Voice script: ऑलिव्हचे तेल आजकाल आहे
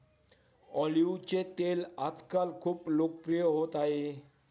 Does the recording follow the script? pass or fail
fail